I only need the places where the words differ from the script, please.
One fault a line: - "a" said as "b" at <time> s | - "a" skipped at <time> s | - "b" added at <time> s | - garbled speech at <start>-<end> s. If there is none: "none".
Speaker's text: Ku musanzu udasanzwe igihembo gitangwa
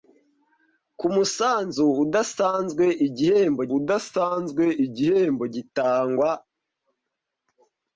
- "udasanzwe igihembo" added at 3.8 s